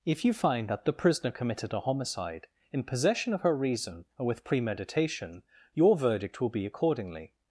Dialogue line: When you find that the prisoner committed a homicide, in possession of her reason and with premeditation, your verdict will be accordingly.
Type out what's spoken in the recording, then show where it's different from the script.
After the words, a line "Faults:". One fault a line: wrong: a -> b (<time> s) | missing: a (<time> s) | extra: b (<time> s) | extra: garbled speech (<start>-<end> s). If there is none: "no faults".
If you find that the prisoner committed a homicide, in possession of her reason and with premeditation, your verdict will be accordingly.
Faults:
wrong: When -> If (0.0 s)